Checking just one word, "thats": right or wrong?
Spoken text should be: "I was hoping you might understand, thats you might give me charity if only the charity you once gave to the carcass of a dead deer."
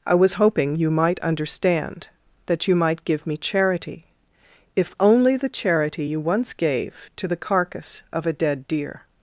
wrong